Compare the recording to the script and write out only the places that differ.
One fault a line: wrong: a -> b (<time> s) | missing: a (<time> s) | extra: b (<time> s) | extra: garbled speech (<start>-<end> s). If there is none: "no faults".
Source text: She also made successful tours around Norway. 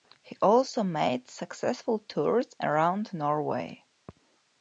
wrong: She -> He (0.2 s)